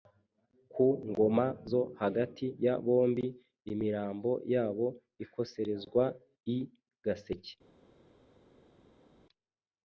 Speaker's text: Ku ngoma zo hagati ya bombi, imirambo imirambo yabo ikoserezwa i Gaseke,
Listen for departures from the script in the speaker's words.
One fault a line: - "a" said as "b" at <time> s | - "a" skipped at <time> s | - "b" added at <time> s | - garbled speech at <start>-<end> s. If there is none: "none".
- "imirambo" skipped at 4.3 s